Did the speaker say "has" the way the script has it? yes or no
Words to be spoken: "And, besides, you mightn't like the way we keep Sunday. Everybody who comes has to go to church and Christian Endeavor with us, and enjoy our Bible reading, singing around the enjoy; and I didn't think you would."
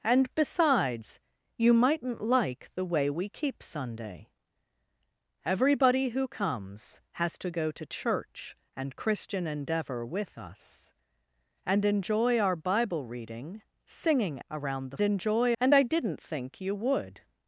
yes